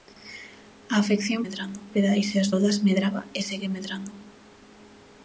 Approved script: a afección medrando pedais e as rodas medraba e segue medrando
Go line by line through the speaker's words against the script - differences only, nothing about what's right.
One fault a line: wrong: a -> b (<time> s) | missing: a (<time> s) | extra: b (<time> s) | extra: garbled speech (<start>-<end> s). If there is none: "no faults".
no faults